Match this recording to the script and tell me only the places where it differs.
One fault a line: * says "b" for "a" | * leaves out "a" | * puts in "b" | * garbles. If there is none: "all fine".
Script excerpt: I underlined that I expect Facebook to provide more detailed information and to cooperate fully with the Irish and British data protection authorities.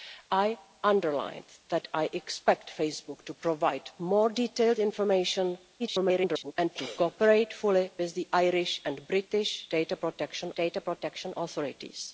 * garbles
* puts in "data protection"